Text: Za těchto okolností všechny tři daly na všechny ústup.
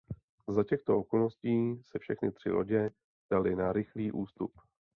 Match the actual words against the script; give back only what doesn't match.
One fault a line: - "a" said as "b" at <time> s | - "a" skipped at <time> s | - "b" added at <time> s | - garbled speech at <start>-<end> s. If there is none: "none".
- "se" added at 1.8 s
- "lodě" added at 2.5 s
- "všechny" said as "rychlý" at 3.7 s